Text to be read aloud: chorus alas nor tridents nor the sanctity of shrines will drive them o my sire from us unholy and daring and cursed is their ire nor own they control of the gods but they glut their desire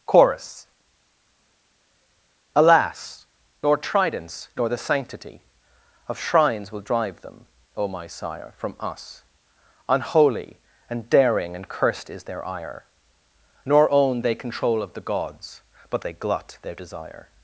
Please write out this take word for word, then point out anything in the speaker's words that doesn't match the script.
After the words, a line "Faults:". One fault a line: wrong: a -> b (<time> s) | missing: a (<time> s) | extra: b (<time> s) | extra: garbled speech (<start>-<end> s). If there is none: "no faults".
chorus alas nor tridents nor the sanctity of shrines will drive them o my sire from us unholy and daring and cursed is their ire nor own they control of the gods but they glut their desire
Faults:
no faults